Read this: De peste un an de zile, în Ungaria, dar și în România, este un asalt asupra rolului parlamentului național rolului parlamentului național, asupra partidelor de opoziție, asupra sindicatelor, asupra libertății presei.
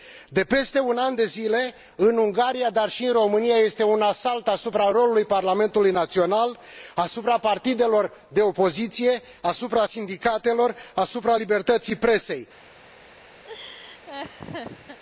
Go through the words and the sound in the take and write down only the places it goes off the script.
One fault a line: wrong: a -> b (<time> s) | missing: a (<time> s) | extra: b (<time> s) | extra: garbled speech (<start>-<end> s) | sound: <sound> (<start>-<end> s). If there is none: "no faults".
missing: rolului parlamentului național (6.6 s)
sound: laugh (13.4-15.0 s)